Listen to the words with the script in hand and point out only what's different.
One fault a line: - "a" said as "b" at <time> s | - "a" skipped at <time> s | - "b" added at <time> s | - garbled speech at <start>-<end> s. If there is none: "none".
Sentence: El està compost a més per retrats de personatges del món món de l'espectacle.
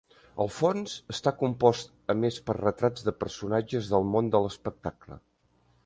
- "fons" added at 0.5 s
- "món" skipped at 4.3 s